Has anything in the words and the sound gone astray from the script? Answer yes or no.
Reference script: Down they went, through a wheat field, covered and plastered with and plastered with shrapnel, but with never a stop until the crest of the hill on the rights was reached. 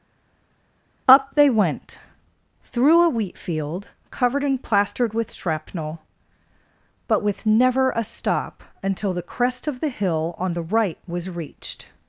yes